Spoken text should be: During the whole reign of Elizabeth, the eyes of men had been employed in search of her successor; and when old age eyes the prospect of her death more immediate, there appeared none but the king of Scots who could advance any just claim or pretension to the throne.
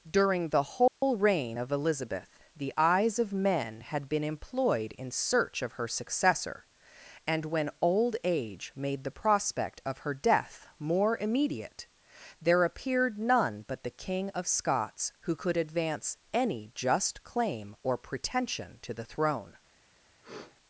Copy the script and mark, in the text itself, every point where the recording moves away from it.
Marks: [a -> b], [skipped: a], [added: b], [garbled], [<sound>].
During the whole [dropout] reign of Elizabeth, the eyes of men had been employed in search of her successor; and when old age [eyes -> made] the prospect of her death more immediate, there appeared none but the king of Scots who could advance any just claim or pretension to the throne. [sniff]